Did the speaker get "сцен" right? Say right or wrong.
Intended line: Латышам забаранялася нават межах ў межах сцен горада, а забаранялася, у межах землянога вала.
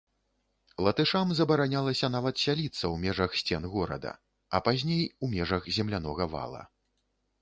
right